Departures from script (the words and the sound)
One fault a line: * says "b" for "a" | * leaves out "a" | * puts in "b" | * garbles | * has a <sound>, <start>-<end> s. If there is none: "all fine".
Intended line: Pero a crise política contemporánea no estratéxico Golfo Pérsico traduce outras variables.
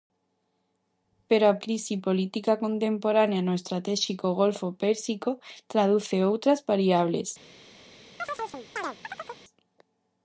* has a chirp, 8.2-9.4 s